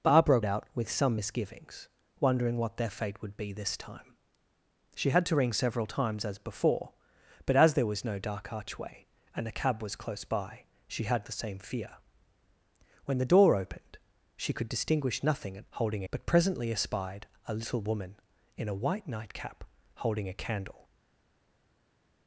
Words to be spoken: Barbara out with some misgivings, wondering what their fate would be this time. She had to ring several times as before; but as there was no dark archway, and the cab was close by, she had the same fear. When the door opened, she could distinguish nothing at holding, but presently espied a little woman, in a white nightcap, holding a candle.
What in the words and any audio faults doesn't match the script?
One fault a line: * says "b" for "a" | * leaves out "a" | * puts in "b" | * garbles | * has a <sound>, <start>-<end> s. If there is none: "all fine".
all fine